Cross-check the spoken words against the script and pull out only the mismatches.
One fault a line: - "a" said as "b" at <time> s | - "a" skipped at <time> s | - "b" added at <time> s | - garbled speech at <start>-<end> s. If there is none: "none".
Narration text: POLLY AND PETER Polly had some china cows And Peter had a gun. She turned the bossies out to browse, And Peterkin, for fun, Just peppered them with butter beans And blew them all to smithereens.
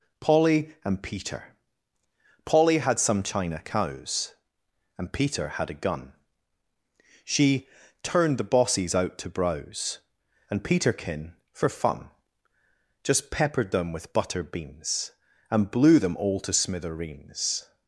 none